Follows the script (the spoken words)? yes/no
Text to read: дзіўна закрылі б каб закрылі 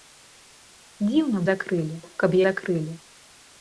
yes